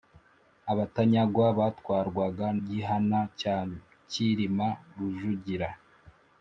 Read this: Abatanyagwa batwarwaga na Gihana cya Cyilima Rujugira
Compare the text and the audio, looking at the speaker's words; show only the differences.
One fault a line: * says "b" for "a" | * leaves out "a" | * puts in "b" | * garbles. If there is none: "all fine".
* leaves out "na"